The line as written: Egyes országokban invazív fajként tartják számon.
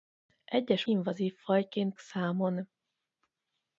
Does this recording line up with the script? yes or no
no